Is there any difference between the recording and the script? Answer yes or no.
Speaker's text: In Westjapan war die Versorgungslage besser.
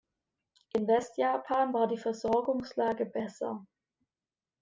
no